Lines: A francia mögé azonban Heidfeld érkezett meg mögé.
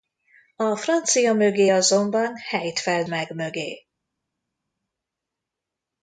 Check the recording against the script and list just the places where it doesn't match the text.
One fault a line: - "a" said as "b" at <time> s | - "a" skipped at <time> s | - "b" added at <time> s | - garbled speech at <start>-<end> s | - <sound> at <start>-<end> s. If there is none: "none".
- "érkezett" skipped at 3.1 s